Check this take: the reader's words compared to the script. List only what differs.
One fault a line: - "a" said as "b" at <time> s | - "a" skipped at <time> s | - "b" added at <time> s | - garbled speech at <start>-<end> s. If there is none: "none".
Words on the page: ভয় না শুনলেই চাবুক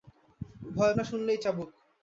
none